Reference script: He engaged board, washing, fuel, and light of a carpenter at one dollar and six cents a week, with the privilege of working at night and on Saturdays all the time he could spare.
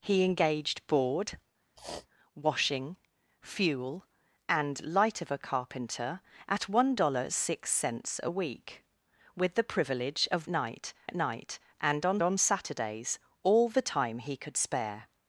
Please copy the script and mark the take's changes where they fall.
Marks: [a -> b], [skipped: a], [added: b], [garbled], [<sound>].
He engaged board, [sniff] washing, fuel, and light of a carpenter at one dollar and six cents a week, with the privilege of [working -> night] at night and on [added: on] Saturdays all the time he could spare.